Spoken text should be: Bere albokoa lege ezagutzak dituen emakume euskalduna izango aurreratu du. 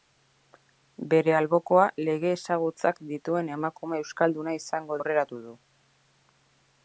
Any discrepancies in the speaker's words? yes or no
no